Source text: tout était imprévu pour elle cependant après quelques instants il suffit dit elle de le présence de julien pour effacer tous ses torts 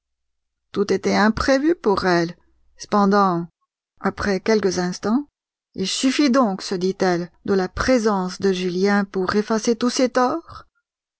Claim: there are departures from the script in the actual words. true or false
true